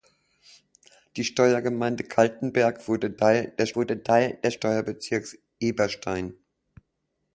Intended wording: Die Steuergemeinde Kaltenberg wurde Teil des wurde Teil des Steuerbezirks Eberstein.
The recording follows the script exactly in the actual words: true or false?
true